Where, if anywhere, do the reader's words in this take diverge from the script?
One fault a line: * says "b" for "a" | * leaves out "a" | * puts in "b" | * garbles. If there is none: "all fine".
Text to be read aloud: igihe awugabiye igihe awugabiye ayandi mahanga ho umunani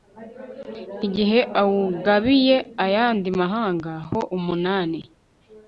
* leaves out "igihe awugabiye"